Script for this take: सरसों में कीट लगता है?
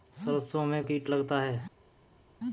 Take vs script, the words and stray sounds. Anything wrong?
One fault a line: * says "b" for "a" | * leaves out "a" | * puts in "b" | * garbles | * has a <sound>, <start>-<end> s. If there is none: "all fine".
all fine